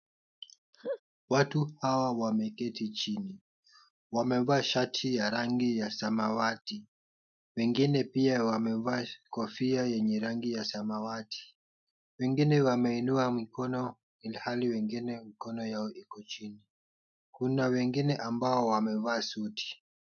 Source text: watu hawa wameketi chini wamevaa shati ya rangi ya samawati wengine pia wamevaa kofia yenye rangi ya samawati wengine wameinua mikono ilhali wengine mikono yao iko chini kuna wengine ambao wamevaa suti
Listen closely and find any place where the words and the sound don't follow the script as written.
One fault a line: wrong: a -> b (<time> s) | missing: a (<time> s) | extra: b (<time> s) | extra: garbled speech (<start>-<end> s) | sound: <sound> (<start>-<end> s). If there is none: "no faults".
sound: laugh (0.7-1.0 s)